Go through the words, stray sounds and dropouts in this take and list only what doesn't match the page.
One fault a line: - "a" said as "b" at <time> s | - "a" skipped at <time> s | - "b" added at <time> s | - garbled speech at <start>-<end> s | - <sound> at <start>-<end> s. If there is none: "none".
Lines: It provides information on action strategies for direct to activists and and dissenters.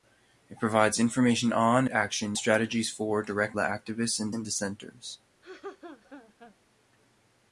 - laugh at 5.4-6.6 s